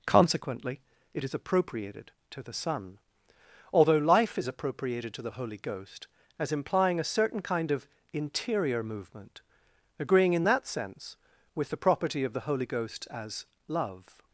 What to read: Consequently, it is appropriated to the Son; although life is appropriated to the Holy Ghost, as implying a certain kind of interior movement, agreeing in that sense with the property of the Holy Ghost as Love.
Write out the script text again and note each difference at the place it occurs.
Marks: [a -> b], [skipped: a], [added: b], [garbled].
Consequently, it is appropriated to the Son; although life is appropriated to the Holy Ghost, as implying a certain kind of interior movement, agreeing in that sense with the property of the Holy Ghost as Love.